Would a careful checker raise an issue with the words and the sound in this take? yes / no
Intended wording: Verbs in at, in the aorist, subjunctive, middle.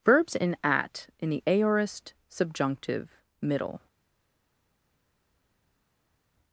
no